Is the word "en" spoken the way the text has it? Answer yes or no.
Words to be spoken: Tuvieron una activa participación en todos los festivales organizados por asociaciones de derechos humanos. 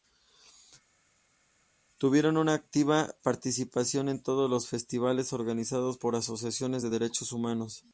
yes